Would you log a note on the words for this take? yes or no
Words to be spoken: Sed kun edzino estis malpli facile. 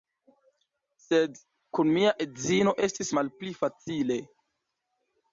yes